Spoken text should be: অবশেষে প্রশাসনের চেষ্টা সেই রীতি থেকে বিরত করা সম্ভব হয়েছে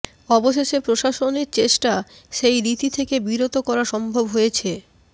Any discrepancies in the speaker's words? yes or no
no